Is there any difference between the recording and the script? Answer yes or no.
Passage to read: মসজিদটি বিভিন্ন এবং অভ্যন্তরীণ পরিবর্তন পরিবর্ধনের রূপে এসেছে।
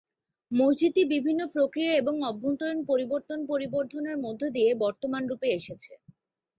yes